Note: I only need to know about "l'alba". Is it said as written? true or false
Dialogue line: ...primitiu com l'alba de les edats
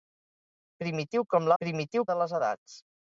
false